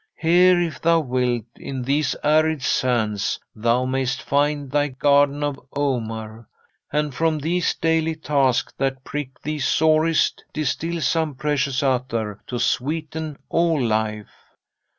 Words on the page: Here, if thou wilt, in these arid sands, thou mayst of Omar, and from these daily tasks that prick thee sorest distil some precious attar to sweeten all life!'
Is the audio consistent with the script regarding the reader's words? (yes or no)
no